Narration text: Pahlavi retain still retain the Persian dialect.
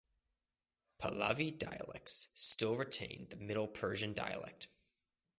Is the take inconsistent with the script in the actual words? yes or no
yes